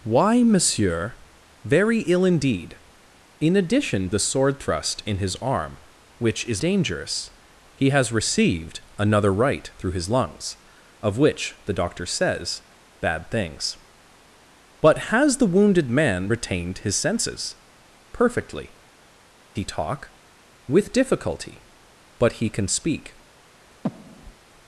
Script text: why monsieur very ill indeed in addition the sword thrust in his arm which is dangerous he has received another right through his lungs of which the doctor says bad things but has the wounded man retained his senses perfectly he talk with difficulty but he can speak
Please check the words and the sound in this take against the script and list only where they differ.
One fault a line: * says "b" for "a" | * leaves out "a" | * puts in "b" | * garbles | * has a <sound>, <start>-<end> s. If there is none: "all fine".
* has a breath, 23.8-24.3 s